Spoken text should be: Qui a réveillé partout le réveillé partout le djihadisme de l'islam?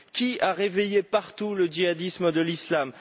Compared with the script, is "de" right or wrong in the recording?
right